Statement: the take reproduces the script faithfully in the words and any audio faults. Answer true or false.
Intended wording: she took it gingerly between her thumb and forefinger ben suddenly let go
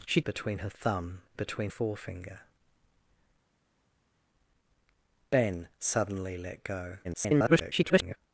false